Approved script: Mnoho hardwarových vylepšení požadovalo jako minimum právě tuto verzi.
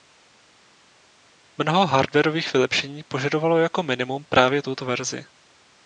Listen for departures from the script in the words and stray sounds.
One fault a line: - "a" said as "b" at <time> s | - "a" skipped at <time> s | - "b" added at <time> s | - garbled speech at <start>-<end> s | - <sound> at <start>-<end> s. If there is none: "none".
none